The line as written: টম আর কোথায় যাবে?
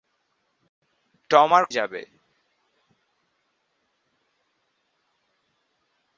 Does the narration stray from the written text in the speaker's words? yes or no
yes